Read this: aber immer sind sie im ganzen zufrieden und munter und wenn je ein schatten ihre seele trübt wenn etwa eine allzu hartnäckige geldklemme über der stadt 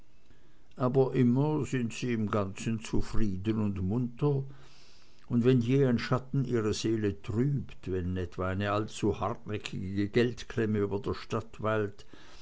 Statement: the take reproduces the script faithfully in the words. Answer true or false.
true